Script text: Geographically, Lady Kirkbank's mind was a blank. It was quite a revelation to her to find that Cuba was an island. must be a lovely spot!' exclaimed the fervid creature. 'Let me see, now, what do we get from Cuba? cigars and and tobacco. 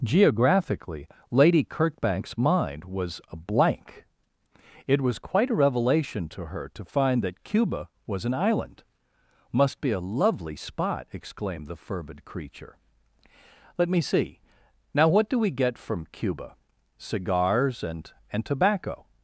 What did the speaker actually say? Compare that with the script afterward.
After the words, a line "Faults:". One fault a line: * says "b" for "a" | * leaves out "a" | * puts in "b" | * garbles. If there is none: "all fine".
Geographically, Lady Kirkbank's mind was a blank. It was quite a revelation to her to find that Cuba was an island. must be a lovely spot!' exclaimed the fervid creature. 'Let me see, now, what do we get from Cuba? cigars and and tobacco.
Faults:
all fine